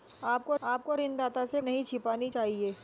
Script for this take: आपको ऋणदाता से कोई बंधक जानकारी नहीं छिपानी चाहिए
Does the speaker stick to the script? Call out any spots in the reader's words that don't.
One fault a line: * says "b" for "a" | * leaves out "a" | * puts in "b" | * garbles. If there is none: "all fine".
* puts in "आपको"
* leaves out "कोई बंधक जानकारी"